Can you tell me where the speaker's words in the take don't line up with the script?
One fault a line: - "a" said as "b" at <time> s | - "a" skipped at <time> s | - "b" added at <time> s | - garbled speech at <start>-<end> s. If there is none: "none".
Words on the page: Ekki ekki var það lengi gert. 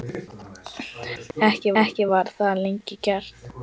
none